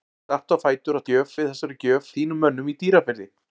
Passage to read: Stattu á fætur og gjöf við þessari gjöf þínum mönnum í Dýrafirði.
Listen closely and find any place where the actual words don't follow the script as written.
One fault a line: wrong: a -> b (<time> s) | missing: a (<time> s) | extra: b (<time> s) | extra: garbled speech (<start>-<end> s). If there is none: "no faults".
no faults